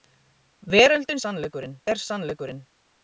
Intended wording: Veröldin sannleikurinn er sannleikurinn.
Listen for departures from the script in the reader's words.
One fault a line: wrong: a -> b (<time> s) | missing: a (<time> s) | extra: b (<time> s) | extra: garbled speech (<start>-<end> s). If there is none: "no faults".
no faults